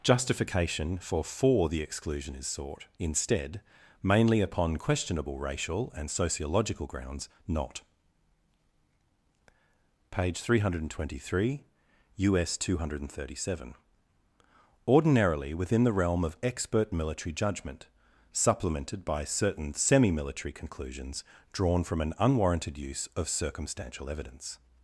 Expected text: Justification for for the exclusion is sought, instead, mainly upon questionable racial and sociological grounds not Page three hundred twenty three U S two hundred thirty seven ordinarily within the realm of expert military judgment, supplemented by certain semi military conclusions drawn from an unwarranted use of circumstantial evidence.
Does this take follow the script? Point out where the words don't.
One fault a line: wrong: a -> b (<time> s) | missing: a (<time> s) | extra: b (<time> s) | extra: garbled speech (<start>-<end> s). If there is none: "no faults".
no faults